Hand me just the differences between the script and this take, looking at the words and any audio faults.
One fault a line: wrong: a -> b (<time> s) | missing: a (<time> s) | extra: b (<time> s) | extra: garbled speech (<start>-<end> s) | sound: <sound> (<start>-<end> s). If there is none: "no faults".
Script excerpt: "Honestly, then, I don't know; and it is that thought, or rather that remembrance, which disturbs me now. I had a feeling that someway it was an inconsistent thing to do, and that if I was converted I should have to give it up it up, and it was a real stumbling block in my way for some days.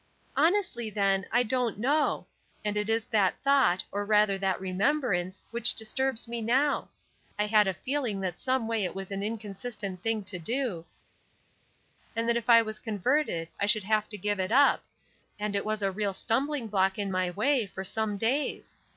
missing: it up (14.8 s)